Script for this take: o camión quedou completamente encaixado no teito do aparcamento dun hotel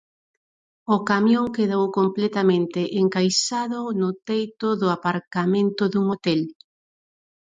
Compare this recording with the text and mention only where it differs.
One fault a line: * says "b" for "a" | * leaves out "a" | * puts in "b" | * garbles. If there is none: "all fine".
all fine